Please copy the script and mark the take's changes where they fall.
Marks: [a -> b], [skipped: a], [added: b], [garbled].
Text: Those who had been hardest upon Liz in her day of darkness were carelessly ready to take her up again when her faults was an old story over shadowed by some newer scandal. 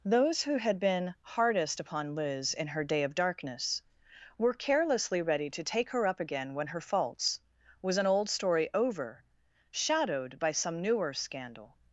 Those who had been hardest upon Liz in her day of darkness were carelessly ready to take her up again when her faults was an old story over shadowed by some newer scandal.